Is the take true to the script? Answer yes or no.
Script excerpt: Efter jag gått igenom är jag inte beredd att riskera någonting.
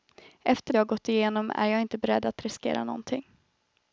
yes